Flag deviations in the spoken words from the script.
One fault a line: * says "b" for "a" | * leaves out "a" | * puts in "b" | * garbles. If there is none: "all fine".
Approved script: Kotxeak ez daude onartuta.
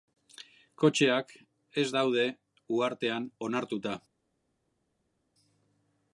* puts in "uhartean"